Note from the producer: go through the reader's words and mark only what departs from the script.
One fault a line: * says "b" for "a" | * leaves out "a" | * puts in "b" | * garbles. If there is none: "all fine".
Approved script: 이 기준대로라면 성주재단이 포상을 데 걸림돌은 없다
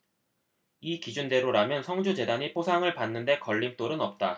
* puts in "받는"